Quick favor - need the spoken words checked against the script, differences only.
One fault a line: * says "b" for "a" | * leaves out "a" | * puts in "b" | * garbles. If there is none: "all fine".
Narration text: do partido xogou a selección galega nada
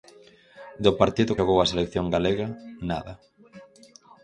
all fine